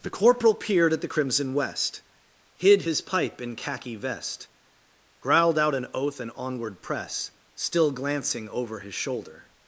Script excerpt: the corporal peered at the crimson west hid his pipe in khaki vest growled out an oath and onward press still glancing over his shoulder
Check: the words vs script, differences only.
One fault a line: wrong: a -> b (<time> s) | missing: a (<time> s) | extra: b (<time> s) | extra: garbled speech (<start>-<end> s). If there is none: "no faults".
no faults